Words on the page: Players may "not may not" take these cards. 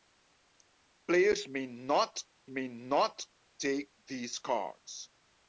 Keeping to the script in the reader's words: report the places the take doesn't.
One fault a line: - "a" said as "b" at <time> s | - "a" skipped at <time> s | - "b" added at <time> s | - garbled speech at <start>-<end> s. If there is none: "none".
none